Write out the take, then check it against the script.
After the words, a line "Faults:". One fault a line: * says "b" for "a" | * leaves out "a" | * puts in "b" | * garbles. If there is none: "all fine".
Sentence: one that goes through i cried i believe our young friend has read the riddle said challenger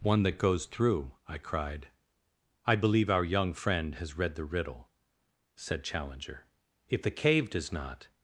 one that goes through i cried i believe our young friend has read the riddle said challenger if the cave does not
Faults:
* puts in "if the cave does not"